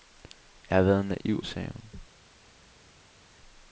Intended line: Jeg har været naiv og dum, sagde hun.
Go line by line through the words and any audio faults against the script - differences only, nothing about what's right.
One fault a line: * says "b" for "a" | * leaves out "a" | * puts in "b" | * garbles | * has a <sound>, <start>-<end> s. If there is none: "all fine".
* leaves out "og dum"